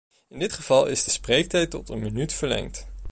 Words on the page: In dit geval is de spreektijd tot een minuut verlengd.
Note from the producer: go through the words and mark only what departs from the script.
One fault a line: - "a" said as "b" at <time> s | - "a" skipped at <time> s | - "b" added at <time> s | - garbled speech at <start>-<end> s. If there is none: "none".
none